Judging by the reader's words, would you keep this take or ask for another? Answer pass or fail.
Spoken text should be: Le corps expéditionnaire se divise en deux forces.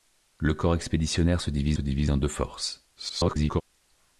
fail